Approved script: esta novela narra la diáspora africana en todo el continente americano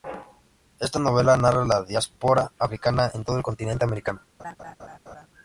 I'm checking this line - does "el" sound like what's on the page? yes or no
yes